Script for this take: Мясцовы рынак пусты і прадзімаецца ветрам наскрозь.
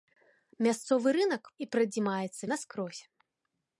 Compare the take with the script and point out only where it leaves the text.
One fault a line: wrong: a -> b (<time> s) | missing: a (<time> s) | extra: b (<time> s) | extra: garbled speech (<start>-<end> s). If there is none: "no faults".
missing: пусты (1.4 s)
missing: ветрам (2.4 s)